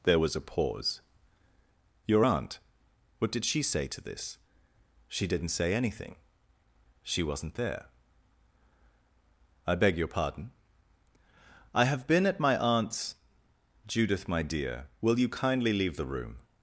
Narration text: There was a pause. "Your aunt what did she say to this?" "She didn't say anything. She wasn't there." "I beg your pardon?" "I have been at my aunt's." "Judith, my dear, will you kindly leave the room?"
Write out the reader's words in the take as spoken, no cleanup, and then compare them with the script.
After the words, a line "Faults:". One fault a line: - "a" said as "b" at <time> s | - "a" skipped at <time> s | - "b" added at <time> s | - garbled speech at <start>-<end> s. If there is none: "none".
There was a pause. "Your aunt what did she say to this?" "She didn't say anything. She wasn't there." "I beg your pardon?" "I have been at my aunt's." "Judith, my dear, will you kindly leave the room?"
Faults:
none